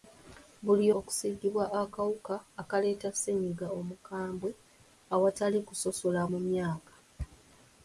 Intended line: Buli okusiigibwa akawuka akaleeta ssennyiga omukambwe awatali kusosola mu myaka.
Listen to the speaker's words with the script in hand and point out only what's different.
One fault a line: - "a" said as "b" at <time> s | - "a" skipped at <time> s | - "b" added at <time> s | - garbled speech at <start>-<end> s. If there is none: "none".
none